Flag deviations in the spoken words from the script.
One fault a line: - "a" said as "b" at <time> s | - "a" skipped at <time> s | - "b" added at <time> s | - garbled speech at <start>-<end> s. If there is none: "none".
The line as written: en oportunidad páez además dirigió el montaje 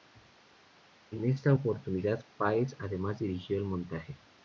- "esta" added at 1.2 s